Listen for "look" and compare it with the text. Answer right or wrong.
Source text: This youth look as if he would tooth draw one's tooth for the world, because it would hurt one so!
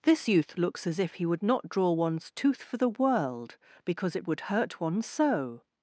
wrong